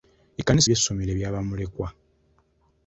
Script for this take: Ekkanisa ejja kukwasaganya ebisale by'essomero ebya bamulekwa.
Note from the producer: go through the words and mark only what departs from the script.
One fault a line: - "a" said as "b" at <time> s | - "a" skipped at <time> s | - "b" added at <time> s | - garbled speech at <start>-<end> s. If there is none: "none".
- "ejja kukwasaganya ebisale" skipped at 0.7 s